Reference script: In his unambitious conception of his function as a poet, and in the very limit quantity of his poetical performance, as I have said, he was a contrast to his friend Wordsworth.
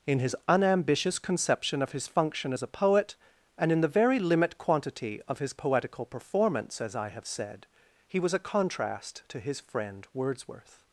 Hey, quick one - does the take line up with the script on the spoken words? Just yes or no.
yes